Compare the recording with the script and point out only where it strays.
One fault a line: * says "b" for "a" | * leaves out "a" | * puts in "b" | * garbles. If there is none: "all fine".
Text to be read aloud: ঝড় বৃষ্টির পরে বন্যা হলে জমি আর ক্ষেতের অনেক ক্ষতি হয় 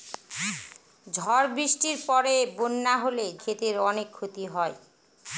* leaves out "জমি আর"